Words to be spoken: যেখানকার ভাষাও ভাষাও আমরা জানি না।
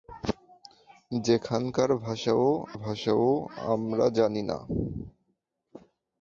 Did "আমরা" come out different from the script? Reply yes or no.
no